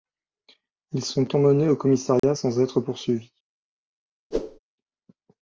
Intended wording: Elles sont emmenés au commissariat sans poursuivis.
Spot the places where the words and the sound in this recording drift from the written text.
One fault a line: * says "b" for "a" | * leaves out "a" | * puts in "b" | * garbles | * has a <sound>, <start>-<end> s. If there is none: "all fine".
* says "Ils" for "Elles"
* has a dropout, 2.2-2.2 s
* puts in "être"
* has a whoosh, 4.3-4.6 s